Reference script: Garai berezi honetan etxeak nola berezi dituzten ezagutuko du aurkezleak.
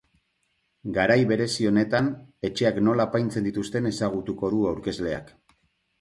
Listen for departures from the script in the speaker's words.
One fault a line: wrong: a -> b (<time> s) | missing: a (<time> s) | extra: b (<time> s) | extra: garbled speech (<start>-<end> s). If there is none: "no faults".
wrong: berezi -> apaintzen (3.1 s)